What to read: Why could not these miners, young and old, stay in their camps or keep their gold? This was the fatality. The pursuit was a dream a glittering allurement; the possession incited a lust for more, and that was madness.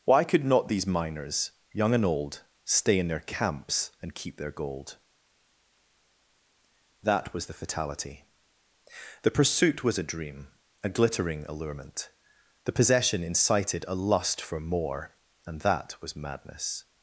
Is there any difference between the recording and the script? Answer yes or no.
yes